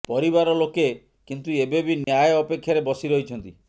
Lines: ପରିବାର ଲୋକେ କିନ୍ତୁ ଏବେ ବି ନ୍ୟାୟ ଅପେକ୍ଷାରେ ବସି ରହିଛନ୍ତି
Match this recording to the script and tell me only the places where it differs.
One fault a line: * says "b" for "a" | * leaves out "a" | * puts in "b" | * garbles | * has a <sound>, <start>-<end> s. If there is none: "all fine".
* has a dropout, 2.0-2.1 s